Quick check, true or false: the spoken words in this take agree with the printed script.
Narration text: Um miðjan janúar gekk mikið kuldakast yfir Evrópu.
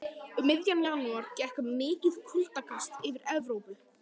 true